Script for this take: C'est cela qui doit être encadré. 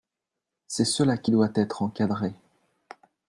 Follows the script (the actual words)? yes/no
yes